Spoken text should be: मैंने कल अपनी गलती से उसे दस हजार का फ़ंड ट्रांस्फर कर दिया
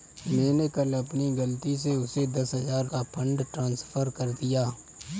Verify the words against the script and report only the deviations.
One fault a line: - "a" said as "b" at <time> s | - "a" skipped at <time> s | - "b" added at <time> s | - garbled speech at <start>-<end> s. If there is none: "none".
none